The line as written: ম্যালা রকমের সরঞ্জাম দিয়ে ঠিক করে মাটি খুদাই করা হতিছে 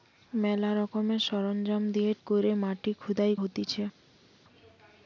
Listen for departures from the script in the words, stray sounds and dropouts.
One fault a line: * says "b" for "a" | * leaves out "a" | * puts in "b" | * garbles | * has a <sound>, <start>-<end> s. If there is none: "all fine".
* leaves out "ঠিক"
* leaves out "করা"